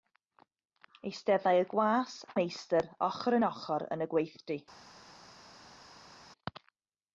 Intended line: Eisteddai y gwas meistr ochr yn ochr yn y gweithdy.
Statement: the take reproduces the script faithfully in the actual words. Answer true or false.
true